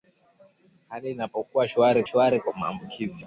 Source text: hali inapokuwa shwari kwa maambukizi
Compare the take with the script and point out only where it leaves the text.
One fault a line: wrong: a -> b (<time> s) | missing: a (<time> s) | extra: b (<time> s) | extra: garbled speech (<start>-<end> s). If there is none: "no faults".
extra: shwari (2.0 s)